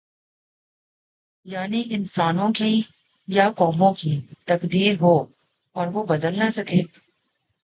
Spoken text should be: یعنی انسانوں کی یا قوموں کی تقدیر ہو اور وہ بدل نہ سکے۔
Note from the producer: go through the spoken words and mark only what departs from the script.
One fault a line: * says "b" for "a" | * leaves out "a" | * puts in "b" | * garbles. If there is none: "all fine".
all fine